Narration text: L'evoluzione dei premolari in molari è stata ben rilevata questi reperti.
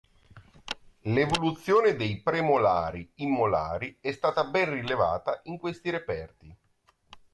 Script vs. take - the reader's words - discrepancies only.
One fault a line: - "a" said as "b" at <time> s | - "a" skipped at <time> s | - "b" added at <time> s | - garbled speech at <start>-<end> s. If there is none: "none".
- "in" added at 5.4 s